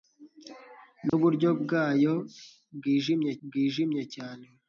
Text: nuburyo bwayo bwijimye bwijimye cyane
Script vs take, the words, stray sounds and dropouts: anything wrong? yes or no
yes